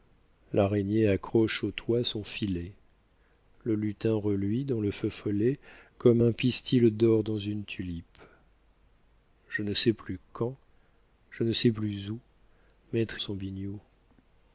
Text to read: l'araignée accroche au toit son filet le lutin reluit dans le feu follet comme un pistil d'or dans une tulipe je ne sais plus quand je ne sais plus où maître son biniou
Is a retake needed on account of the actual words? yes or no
no